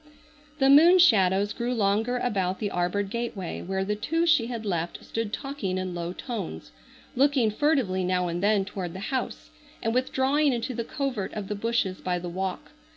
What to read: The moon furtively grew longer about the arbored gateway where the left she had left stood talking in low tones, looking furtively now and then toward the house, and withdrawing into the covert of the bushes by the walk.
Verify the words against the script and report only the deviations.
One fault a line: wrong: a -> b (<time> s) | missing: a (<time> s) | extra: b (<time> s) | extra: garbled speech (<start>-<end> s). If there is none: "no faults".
wrong: furtively -> shadows (1.0 s)
wrong: left -> two (4.0 s)